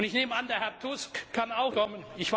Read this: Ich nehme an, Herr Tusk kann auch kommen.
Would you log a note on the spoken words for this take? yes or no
no